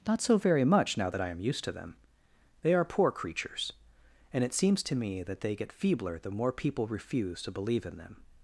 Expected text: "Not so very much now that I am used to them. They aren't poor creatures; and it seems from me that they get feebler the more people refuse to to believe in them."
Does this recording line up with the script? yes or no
no